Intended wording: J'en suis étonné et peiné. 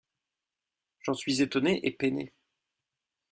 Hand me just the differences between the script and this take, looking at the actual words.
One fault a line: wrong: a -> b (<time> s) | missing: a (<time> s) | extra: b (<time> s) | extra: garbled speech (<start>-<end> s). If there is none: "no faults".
no faults